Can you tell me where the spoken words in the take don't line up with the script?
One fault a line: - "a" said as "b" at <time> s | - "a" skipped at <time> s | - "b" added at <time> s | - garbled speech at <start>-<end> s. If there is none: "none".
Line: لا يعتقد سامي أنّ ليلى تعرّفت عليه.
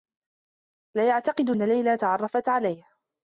- "سامي" skipped at 1.5 s